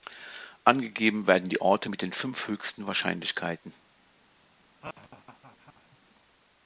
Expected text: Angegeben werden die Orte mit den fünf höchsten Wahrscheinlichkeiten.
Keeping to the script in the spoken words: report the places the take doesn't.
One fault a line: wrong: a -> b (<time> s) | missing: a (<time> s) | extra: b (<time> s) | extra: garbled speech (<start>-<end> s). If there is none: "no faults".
no faults